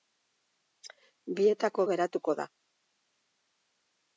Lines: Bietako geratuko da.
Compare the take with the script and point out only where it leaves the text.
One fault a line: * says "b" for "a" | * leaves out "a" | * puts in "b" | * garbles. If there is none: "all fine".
all fine